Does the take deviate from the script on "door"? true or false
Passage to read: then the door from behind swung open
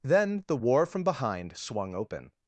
true